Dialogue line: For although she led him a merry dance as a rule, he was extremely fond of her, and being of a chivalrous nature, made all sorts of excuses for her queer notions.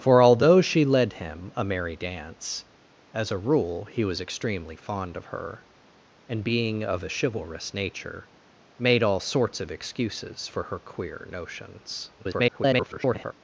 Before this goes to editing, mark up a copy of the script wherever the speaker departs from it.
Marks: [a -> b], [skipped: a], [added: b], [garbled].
For although she led him a merry dance as a rule, he was extremely fond of her, and being of a chivalrous nature, made all sorts of excuses for her queer notions. [garbled]